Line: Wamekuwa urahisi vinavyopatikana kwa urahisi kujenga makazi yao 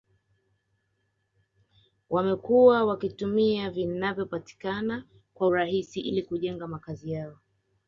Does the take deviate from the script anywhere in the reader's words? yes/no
yes